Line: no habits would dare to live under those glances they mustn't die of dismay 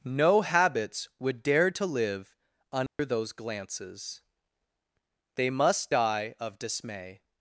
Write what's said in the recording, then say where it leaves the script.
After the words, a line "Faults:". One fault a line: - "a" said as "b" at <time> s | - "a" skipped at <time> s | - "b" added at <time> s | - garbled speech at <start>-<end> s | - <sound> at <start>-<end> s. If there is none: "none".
no habits would dare to live under those glances they must die of dismay
Faults:
- dropout at 2.9-3.0 s
- "mustn't" said as "must" at 5.5 s